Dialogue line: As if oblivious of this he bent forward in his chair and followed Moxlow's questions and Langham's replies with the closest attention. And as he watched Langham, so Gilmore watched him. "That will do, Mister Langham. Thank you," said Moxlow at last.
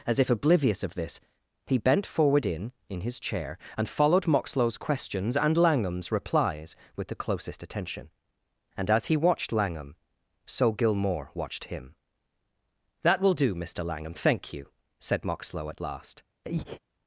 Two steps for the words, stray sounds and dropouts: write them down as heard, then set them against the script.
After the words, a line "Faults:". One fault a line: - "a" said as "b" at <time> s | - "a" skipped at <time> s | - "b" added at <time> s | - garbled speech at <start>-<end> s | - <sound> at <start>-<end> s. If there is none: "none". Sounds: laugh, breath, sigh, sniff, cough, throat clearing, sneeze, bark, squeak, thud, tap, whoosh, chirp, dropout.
As if oblivious of this he bent forward in in his chair and followed Moxlow's questions and Langham's replies with the closest attention. And as he watched Langham, so Gilmore watched him. "That will do, Mister Langham. Thank you," said Moxlow at last.
Faults:
- "in" added at 2.9 s
- breath at 16.4-16.8 s